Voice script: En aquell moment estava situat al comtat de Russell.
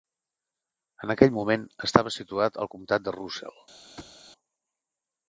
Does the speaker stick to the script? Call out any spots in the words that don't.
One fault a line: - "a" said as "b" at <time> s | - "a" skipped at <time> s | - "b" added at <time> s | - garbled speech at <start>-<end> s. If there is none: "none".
none